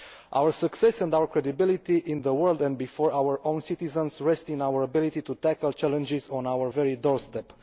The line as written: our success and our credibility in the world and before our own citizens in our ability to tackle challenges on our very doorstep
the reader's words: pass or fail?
fail